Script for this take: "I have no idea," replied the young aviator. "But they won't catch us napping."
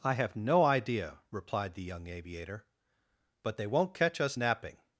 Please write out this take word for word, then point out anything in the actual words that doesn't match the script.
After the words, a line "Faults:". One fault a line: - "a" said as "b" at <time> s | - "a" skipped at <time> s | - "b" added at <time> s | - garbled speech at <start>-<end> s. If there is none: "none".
"I have no idea," replied the young aviator. "But they won't catch us napping."
Faults:
none